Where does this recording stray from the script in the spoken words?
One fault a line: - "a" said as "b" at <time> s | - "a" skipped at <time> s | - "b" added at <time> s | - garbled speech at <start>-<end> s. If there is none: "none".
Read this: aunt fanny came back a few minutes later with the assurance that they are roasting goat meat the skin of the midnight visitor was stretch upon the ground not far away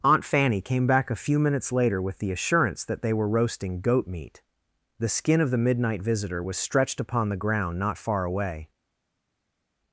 - "are" said as "were" at 3.1 s
- "stretch" said as "stretched" at 6.6 s